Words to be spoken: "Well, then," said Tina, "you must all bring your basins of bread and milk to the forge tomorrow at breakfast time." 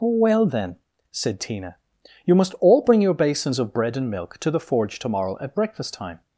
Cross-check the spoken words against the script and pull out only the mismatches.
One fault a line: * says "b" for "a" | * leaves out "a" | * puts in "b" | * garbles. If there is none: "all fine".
all fine